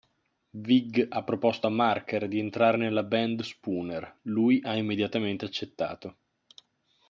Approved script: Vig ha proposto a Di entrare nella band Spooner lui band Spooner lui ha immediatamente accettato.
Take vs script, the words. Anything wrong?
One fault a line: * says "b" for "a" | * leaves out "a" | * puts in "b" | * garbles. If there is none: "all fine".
* puts in "Marker"
* leaves out "band Spooner lui"